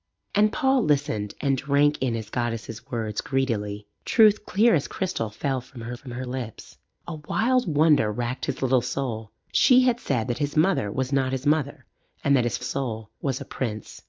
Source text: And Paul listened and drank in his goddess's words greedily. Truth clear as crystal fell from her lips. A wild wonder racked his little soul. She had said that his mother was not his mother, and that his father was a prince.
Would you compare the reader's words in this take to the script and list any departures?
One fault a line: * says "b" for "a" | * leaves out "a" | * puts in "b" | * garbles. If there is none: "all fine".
* puts in "from her"
* says "soul" for "father"